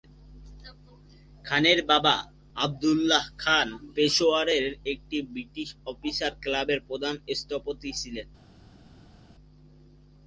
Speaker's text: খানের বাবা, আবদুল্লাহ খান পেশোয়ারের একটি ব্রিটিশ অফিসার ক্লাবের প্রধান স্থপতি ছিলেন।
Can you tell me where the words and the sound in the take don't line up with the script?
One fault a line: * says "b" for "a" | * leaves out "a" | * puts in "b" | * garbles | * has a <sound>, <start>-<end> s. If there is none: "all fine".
all fine